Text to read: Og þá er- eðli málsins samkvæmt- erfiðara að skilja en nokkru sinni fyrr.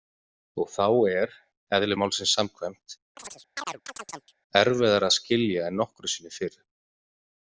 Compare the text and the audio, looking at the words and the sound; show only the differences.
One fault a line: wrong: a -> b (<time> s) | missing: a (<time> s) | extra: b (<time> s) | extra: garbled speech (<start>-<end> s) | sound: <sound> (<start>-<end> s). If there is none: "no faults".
sound: chirp (3.2-4.3 s)